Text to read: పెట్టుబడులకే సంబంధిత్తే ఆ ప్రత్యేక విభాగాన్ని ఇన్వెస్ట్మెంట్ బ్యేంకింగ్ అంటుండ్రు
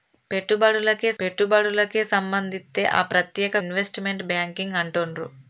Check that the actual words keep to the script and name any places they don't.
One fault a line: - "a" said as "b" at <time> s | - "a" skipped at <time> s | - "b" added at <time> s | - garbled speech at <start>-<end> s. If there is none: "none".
- "పెట్టుబడులకే" added at 1.2 s
- "విభాగాన్ని" skipped at 3.6 s